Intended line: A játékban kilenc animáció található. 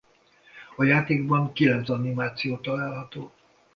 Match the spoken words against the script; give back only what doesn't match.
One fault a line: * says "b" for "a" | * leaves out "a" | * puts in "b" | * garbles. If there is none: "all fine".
all fine